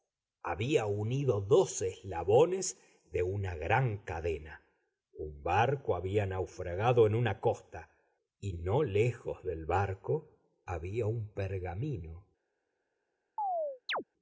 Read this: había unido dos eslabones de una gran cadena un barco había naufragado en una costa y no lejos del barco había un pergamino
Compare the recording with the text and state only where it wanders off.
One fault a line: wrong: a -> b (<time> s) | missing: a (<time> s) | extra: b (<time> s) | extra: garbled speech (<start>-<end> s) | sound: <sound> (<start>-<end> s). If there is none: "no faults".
sound: chirp (13.4-14.0 s)